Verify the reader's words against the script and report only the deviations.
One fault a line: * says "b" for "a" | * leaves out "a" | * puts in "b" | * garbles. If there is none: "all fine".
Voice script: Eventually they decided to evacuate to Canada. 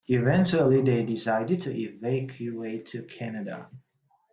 all fine